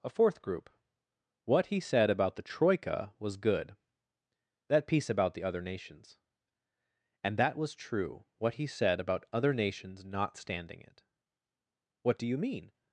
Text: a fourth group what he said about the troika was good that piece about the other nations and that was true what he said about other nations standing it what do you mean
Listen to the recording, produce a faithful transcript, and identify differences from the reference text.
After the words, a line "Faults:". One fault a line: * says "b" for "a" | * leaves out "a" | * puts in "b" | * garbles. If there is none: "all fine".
a fourth group what he said about the troika was good that piece about the other nations and that was true what he said about other nations not standing it what do you mean
Faults:
* puts in "not"